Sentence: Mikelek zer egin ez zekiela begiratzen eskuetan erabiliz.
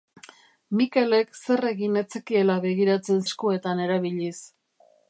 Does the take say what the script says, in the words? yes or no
yes